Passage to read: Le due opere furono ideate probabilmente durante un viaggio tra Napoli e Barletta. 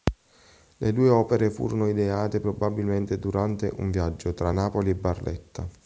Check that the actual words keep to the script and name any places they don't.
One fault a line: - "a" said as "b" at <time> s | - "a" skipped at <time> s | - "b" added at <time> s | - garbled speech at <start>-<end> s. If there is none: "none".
none